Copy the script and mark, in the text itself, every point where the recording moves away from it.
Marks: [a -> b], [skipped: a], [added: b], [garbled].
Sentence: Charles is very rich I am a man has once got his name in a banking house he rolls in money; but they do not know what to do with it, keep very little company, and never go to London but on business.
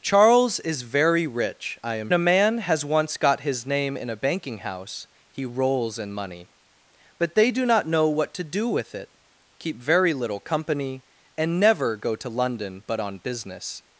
Charles is very rich I am a man has once got his name in a banking house he rolls in money; but they do not know what to do with it, keep very little company, and never go to London but on business.